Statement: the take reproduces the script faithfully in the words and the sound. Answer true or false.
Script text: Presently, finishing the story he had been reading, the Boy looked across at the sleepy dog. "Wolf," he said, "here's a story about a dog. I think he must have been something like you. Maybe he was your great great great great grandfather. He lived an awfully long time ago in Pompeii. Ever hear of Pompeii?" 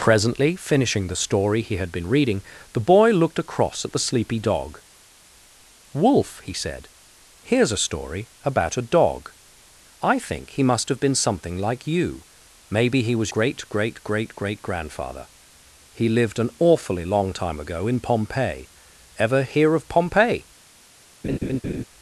false